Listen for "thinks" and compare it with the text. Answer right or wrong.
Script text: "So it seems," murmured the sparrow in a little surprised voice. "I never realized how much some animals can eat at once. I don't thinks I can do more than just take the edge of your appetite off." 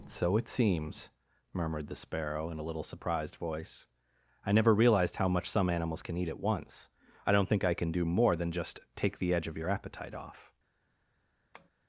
wrong